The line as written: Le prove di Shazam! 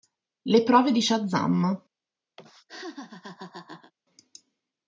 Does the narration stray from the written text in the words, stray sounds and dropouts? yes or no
yes